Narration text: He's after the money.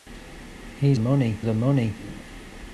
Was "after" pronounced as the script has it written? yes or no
no